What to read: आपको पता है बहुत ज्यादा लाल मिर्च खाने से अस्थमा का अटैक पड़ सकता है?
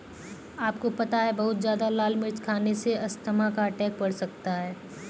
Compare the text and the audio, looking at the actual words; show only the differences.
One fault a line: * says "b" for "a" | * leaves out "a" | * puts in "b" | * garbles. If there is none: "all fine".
all fine